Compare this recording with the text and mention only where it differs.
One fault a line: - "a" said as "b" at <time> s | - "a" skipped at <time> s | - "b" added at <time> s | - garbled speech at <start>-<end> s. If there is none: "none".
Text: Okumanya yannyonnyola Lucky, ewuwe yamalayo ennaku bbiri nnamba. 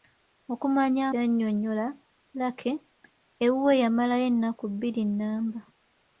none